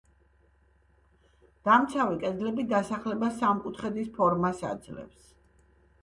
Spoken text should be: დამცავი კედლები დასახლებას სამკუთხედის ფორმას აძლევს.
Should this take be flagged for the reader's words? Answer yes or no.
no